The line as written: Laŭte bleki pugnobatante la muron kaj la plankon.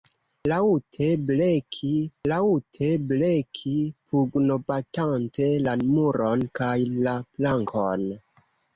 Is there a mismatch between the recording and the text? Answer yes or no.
yes